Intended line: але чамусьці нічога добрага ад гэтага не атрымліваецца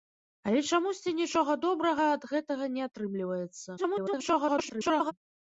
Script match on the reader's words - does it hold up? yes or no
no